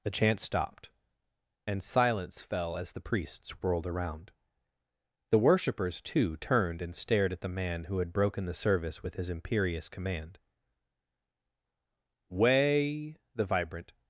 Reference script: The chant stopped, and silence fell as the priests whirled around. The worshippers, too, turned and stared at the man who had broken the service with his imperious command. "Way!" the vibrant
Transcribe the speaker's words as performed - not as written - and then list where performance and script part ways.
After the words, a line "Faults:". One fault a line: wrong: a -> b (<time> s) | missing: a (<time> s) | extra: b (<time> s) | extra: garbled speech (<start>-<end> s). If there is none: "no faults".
The chant stopped, and silence fell as the priests whirled around. The worshippers, too, turned and stared at the man who had broken the service with his imperious command. "Way!" the vibrant
Faults:
no faults